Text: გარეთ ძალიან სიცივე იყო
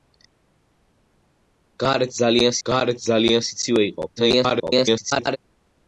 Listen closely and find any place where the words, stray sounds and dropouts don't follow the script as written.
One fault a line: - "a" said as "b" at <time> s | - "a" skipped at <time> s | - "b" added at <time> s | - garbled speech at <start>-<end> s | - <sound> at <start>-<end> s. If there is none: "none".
- "გარეთ ძალიან" added at 2.7 s
- garbled speech at 4.2-5.4 s